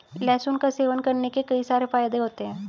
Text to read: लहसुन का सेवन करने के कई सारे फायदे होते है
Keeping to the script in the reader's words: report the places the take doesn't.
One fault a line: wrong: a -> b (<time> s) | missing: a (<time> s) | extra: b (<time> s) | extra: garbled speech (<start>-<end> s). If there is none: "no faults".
no faults